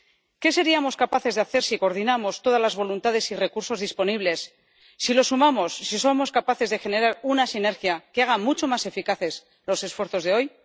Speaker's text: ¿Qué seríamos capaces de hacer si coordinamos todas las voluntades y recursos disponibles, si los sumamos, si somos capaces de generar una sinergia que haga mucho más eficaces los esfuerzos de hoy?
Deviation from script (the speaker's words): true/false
false